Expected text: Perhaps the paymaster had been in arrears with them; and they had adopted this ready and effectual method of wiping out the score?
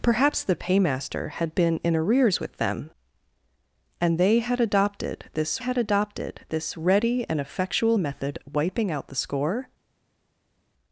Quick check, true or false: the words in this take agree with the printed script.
false